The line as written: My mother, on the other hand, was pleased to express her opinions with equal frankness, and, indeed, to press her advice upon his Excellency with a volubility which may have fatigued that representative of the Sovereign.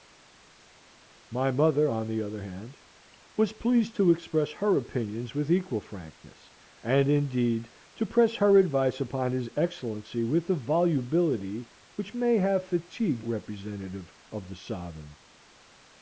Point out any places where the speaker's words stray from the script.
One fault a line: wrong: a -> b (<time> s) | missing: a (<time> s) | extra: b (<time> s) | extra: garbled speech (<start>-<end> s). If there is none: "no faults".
missing: that (13.3 s)